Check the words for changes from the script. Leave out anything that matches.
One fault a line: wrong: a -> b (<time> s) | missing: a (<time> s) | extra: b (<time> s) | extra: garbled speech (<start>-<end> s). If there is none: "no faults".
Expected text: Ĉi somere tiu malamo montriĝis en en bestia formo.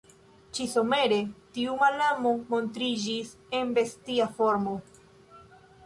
missing: en (3.7 s)